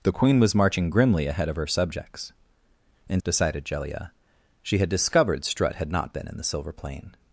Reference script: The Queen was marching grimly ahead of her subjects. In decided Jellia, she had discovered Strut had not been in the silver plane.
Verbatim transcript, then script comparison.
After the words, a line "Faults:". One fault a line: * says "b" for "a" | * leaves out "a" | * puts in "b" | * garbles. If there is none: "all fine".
The Queen was marching grimly ahead of her subjects. In decided Jellia, she had discovered Strut had not been in the silver plane.
Faults:
all fine